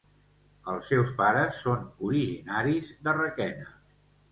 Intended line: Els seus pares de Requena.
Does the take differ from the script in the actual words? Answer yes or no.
yes